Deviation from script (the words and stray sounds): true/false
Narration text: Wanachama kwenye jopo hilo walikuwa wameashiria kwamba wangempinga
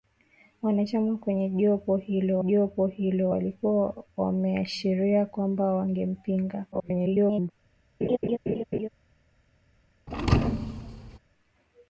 true